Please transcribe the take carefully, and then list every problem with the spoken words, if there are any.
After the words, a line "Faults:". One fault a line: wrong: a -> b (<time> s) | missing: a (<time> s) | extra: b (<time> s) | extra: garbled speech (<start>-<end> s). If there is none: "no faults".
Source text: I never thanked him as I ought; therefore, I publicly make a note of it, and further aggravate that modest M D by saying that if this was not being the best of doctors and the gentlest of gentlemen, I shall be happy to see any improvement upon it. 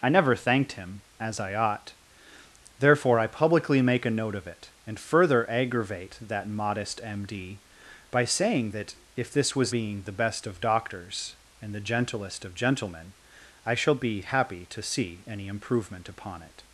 I never thanked him as I ought; therefore, I publicly make a note of it, and further aggravate that modest M D by saying that if this was being the best of doctors and the gentlest of gentlemen, I shall be happy to see any improvement upon it.
Faults:
missing: not (9.8 s)